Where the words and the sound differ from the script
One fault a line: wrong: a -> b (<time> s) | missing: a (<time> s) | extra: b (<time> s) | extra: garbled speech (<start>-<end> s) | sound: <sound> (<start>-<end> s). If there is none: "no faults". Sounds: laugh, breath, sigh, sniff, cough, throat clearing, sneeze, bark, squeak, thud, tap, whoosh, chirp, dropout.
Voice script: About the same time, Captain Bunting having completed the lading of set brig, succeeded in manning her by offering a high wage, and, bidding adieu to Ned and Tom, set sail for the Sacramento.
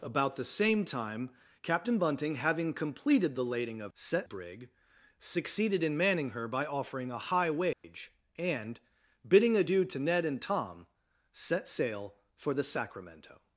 sound: dropout (7.7-7.8 s)